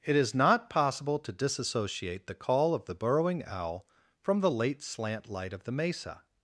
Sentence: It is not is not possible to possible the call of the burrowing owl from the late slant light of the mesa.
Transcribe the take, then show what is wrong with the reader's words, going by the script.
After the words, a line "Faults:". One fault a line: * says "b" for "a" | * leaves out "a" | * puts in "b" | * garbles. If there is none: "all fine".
It is not possible to disassociate the call of the burrowing owl from the late slant light of the mesa.
Faults:
* leaves out "is not"
* says "disassociate" for "possible"